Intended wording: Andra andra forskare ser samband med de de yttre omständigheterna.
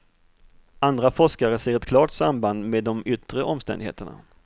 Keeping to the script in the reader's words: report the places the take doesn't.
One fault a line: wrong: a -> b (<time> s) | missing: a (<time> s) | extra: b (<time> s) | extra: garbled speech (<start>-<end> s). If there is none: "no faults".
missing: andra (1.1 s)
extra: ett klart (1.8 s)
missing: de (3.0 s)